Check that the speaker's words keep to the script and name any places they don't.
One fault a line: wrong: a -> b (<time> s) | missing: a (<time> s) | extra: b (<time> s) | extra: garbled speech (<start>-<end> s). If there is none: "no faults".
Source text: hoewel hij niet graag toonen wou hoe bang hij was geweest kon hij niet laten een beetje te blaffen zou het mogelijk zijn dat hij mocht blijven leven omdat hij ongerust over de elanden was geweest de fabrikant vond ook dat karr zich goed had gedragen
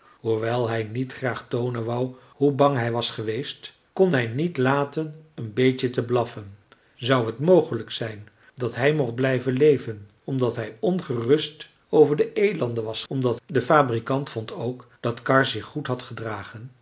wrong: geweest -> omdat (13.1 s)